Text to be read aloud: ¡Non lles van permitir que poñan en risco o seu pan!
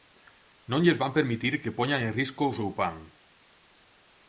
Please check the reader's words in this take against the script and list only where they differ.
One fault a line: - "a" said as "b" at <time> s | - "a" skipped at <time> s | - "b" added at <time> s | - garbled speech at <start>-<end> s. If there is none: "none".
none